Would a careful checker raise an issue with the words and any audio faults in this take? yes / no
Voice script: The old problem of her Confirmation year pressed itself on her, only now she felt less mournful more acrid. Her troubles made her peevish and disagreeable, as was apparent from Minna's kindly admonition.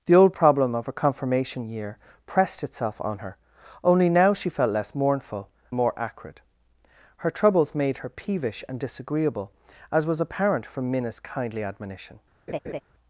yes